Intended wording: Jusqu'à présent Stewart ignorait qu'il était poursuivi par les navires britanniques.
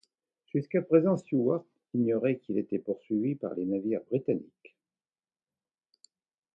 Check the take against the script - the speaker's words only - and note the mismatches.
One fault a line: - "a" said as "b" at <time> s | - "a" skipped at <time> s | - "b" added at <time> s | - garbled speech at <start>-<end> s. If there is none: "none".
none